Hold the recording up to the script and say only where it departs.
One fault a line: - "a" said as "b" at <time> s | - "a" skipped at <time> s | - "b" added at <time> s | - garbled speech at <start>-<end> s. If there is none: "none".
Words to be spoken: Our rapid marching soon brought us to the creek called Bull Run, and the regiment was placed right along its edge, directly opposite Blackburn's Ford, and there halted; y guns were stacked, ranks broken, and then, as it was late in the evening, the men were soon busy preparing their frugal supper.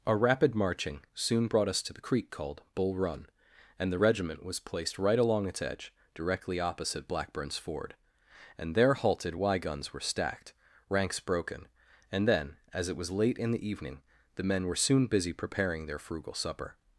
none